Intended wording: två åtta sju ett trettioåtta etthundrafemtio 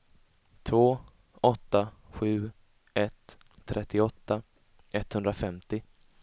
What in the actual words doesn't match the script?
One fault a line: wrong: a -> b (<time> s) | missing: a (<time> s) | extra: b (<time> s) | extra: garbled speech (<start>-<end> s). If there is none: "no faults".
no faults